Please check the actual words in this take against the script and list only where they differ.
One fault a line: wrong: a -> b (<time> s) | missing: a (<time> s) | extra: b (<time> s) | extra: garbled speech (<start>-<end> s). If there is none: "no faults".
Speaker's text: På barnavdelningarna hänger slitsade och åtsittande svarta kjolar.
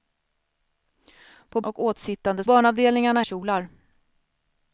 missing: barnavdelningarna hänger slitsade (1.6 s)
wrong: svarta -> barnavdelningarna (2.4 s)